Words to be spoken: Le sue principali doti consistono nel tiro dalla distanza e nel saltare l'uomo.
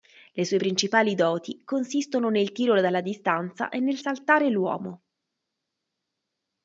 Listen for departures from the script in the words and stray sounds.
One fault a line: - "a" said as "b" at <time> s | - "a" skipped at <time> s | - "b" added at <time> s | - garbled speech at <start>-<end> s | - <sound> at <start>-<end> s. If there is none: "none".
none